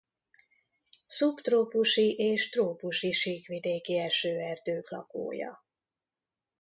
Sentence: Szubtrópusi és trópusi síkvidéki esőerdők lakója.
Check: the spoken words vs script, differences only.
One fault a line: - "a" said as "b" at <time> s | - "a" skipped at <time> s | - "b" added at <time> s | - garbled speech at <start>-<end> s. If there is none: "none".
none